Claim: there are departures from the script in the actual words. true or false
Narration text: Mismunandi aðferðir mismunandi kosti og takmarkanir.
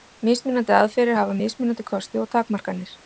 true